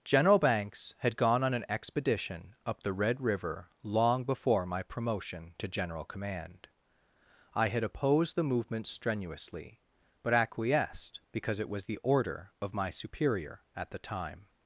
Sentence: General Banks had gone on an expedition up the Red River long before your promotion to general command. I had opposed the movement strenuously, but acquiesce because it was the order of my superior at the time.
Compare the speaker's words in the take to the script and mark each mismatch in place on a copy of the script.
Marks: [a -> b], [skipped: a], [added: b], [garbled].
General Banks had gone on an expedition up the Red River long before [your -> my] promotion to general command. I had opposed the movement strenuously, but [acquiesce -> acquiesced] because it was the order of my superior at the time.